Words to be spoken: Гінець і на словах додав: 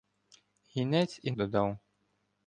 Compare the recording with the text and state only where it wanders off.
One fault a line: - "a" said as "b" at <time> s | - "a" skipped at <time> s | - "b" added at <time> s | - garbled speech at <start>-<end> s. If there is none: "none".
- "на словах" skipped at 1.3 s